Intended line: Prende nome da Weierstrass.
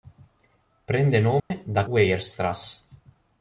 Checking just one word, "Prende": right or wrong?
right